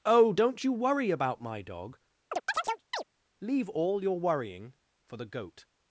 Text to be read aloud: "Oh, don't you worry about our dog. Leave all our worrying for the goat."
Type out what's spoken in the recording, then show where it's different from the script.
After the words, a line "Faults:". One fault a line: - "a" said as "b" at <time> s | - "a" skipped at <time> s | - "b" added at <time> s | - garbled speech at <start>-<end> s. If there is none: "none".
"Oh, don't you worry about my dog. Leave all your worrying for the goat."
Faults:
- "our" said as "my" at 1.4 s
- "our" said as "your" at 4.0 s